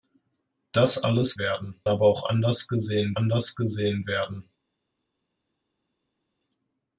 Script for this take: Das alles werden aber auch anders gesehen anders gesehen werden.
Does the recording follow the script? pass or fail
pass